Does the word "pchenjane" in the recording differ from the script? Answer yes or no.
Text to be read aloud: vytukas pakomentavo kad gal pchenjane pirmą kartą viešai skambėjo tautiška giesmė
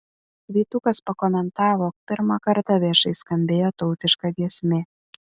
yes